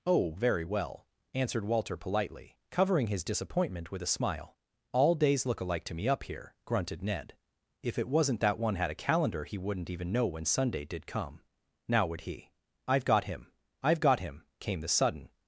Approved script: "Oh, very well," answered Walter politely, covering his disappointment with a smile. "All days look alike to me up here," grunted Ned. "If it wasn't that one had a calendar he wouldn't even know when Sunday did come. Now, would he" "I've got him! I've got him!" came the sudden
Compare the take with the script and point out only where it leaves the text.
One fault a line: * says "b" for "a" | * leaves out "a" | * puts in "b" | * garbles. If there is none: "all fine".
all fine